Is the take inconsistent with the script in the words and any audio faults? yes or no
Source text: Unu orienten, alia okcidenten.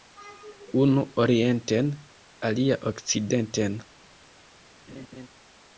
yes